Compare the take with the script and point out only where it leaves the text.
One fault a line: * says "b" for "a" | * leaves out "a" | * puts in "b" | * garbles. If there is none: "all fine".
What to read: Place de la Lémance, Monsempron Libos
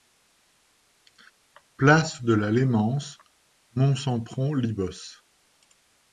all fine